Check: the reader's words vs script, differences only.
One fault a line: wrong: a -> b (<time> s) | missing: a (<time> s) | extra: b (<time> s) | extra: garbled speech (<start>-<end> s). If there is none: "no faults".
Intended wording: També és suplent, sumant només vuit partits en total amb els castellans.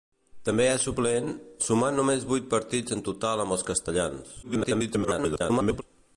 extra: garbled speech (4.4-5.8 s)